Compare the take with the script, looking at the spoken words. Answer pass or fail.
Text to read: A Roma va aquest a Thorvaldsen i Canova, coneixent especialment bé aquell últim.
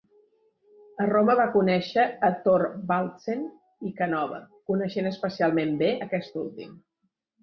fail